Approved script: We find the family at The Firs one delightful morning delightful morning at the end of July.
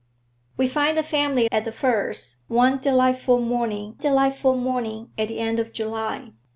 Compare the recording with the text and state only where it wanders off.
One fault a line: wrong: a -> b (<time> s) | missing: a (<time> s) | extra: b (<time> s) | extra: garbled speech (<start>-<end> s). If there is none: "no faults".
no faults